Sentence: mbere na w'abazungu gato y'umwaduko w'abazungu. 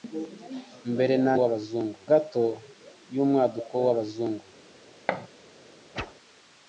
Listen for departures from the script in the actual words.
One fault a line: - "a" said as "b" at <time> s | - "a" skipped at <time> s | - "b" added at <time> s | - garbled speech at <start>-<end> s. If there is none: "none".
none